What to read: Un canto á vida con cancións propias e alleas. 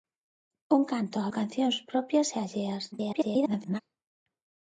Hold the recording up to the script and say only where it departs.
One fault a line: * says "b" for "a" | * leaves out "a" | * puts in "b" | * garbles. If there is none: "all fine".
* leaves out "vida con"
* garbles